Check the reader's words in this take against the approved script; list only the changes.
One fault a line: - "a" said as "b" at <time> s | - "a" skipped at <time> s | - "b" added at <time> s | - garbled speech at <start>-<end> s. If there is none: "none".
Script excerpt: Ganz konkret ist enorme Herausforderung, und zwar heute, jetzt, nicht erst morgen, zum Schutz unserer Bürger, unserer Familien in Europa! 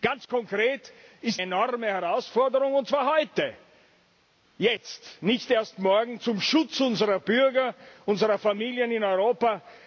none